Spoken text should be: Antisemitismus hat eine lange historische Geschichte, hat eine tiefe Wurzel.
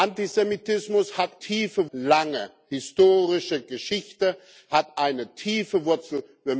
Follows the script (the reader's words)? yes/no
no